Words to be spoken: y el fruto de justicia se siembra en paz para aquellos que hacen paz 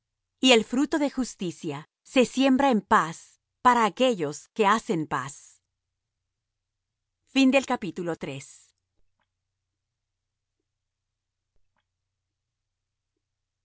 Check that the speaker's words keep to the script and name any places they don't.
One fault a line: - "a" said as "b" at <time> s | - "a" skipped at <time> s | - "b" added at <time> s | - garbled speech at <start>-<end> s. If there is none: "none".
none